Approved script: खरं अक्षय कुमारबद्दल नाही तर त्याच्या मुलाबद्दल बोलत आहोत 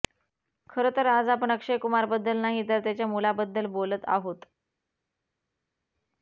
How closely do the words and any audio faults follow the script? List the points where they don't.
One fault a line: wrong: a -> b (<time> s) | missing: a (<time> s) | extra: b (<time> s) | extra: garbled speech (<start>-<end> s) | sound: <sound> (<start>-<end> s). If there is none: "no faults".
extra: तर आज आपण (0.9 s)